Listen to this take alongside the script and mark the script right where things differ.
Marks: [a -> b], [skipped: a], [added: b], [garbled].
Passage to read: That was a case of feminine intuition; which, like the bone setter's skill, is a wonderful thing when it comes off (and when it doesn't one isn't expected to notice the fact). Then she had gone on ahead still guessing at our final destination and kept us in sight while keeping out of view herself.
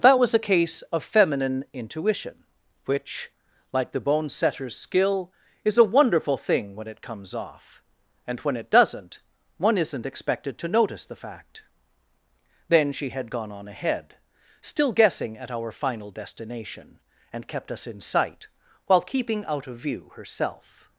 That was a case of feminine intuition; which, like the bone setter's skill, is a wonderful thing when it comes off (and when it doesn't one isn't expected to notice the fact). Then she had gone on ahead still guessing at our final destination and kept us in sight while keeping out of view herself.